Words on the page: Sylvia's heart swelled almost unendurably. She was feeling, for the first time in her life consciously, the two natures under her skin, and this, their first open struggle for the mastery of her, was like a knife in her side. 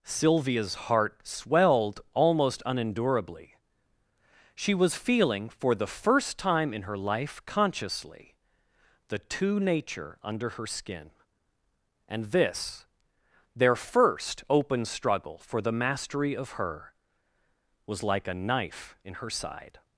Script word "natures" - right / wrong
wrong